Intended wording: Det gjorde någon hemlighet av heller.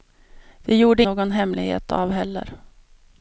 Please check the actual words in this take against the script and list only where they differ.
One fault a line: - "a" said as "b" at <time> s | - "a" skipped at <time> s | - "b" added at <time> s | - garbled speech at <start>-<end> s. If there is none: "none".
none